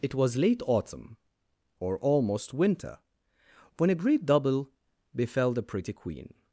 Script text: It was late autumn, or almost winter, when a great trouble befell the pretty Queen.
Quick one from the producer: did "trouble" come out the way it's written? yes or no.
no